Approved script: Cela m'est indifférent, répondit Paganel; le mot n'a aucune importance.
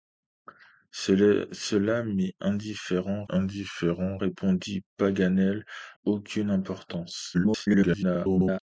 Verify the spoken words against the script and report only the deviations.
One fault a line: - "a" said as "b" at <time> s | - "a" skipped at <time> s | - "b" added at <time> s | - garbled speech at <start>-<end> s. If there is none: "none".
- "indifférent" added at 3.3 s
- "le mot n'a" skipped at 5.7 s
- garbled speech at 7.3-8.6 s